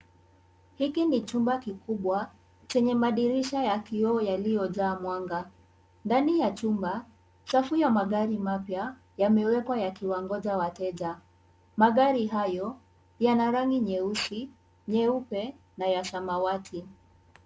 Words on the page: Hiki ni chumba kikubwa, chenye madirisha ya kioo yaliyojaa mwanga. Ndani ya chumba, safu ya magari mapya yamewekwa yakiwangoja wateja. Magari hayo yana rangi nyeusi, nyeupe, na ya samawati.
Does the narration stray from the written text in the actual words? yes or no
no